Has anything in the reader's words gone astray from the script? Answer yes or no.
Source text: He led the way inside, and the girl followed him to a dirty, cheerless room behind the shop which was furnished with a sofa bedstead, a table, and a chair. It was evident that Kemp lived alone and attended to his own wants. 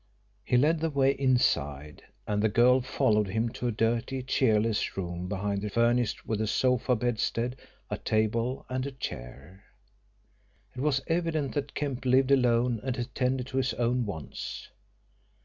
yes